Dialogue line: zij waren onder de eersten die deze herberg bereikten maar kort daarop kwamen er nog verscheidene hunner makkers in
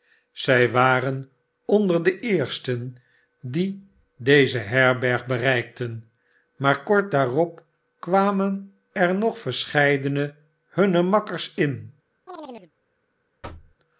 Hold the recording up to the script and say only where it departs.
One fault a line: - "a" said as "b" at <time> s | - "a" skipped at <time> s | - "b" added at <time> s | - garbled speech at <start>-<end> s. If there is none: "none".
none